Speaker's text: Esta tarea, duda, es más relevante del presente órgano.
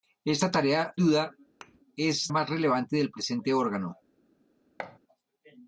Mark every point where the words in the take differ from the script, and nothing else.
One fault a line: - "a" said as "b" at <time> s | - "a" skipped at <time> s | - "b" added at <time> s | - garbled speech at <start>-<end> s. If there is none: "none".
none